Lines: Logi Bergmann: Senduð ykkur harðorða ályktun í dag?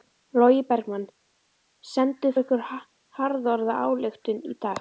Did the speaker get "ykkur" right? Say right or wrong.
right